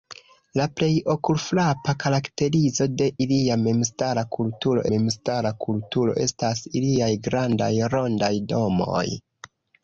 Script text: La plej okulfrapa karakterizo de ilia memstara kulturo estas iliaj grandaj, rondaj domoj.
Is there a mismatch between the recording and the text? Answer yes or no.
yes